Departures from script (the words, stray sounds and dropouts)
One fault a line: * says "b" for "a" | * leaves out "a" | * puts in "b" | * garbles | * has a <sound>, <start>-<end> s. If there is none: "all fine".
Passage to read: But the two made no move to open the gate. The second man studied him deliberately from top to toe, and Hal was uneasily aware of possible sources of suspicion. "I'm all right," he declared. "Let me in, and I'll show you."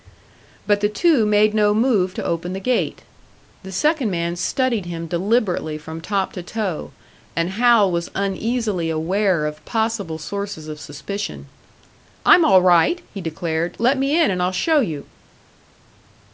all fine